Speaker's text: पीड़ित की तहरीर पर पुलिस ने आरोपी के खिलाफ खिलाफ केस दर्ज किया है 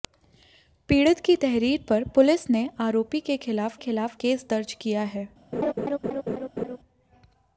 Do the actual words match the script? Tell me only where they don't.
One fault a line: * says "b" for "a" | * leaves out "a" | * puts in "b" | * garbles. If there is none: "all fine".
all fine